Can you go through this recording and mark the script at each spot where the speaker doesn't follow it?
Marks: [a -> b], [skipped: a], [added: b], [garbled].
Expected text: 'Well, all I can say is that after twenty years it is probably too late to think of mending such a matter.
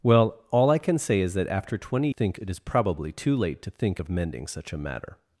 'Well, all I can say is that after twenty [years -> think] it is probably too late to think of mending such a matter.